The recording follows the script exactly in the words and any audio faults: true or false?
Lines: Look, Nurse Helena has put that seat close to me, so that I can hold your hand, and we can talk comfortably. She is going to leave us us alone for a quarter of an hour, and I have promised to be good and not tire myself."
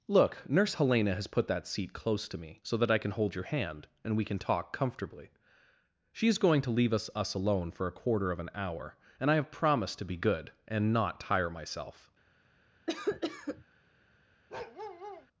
false